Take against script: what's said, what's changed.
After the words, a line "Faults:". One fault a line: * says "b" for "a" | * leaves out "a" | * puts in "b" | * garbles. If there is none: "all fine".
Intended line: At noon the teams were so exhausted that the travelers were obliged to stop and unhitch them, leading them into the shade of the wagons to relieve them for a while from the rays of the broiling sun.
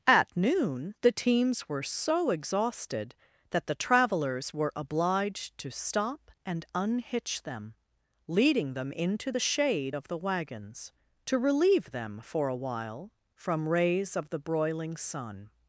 At noon the teams were so exhausted that the travelers were obliged to stop and unhitch them, leading them into the shade of the wagons to relieve them for a while from rays of the broiling sun.
Faults:
* leaves out "the"